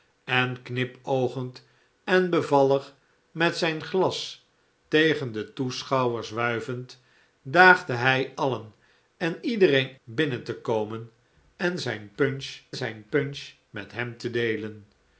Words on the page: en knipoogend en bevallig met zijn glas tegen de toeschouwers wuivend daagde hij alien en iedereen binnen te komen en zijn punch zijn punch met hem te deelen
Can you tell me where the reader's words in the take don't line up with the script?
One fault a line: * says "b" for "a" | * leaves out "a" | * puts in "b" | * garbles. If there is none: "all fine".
all fine